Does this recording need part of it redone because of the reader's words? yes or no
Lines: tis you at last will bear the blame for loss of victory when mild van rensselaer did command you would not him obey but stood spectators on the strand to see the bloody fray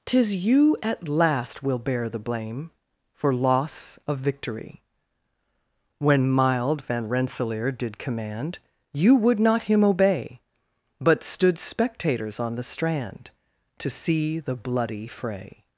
no